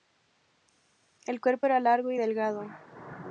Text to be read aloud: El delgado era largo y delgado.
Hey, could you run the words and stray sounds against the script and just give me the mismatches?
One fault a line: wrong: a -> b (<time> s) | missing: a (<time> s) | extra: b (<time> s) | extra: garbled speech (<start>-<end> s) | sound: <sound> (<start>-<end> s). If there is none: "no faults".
wrong: delgado -> cuerpo (1.4 s)